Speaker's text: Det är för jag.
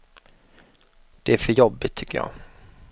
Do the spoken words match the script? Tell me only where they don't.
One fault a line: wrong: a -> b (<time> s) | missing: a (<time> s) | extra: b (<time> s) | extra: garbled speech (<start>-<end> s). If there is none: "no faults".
extra: jobbigt tycker (1.5 s)